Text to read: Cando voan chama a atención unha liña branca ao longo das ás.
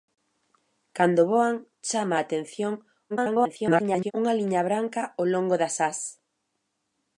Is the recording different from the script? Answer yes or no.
yes